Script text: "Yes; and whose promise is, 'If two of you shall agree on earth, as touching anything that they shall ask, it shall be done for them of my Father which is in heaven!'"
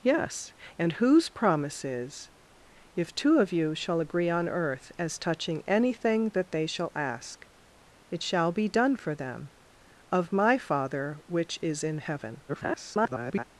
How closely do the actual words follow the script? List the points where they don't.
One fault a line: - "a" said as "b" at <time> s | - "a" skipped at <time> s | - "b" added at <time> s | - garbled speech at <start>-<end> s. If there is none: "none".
- garbled speech at 12.5-13.4 s